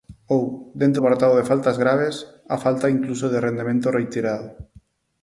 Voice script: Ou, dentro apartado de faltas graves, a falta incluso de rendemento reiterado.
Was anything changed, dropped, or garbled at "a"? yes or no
no